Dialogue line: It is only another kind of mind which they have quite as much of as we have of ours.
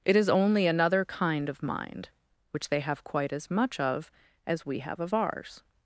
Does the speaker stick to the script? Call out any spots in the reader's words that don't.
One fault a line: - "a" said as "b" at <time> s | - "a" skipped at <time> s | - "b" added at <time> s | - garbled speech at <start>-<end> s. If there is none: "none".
none